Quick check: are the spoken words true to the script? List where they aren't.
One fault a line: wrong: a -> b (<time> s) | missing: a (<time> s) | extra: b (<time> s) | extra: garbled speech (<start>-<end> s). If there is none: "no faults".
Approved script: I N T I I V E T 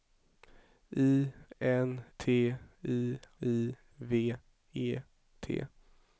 no faults